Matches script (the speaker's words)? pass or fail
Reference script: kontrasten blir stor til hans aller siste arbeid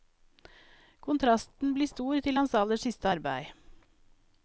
pass